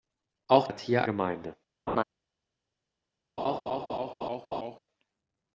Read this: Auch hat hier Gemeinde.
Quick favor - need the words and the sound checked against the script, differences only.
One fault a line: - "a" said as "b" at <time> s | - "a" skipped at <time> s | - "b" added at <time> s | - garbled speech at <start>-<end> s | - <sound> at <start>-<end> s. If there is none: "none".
- laugh at 1.9-2.0 s
- laugh at 3.4-4.8 s